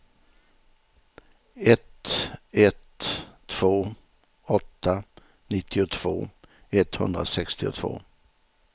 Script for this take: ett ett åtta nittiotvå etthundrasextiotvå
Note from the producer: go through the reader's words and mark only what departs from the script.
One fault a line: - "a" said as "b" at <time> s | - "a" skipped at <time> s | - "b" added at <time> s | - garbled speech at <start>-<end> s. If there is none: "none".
- "två" added at 3.5 s